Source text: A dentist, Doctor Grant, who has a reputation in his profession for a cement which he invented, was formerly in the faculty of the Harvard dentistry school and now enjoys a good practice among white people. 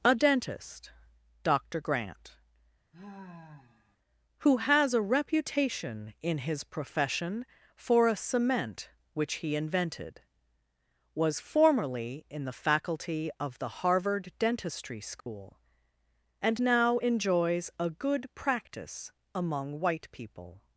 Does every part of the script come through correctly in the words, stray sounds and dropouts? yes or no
no